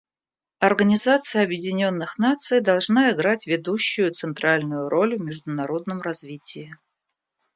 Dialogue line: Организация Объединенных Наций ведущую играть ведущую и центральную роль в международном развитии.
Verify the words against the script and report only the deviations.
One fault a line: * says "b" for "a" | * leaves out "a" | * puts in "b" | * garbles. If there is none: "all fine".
* says "должна" for "ведущую"